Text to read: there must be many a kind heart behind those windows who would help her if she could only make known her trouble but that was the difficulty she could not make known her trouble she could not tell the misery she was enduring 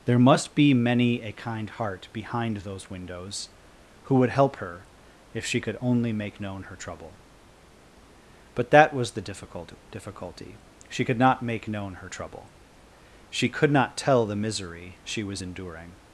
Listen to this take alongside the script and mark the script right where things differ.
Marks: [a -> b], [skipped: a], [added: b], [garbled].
there must be many a kind heart behind those windows who would help her if she could only make known her trouble but that was the [added: difficult] difficulty she could not make known her trouble she could not tell the misery she was enduring